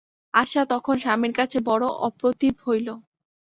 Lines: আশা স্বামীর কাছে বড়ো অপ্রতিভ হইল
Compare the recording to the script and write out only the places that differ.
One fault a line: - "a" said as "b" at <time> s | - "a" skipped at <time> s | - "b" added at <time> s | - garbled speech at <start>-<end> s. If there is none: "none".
- "তখন" added at 0.7 s